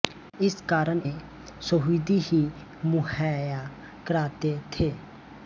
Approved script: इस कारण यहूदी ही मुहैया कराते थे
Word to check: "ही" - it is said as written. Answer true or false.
true